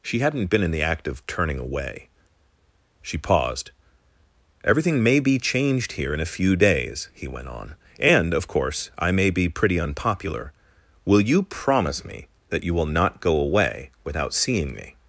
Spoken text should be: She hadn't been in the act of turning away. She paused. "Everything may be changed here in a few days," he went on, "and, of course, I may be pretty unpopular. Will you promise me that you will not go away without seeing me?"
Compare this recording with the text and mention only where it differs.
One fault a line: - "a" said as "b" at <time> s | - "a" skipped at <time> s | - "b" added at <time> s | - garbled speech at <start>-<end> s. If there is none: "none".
none